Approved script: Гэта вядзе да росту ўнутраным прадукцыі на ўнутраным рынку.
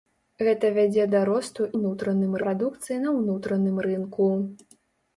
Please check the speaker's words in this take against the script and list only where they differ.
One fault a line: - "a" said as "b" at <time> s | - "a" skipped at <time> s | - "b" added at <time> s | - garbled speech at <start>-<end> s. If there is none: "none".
none